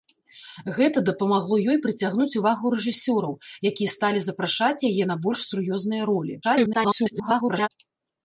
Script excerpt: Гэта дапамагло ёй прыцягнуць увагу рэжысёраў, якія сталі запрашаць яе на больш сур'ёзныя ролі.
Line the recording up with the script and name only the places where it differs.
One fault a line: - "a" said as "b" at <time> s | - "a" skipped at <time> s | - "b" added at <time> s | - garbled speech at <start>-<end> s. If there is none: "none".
- garbled speech at 6.4-7.7 s